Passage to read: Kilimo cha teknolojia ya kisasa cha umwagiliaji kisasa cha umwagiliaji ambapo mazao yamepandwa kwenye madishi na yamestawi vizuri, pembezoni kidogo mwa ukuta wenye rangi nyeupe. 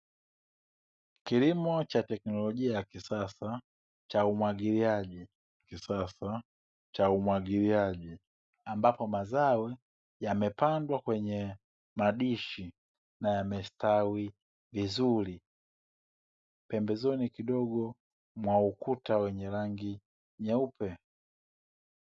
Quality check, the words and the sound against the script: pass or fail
pass